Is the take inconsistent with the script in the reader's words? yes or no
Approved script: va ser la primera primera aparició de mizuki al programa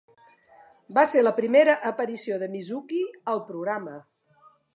yes